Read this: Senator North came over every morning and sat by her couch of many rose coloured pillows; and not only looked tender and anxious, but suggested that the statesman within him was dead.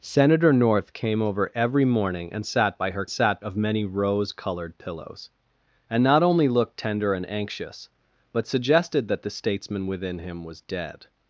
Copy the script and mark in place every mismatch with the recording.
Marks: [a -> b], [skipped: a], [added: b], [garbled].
Senator North came over every morning and sat by her [couch -> sat] of many rose coloured pillows; and not only looked tender and anxious, but suggested that the statesman within him was dead.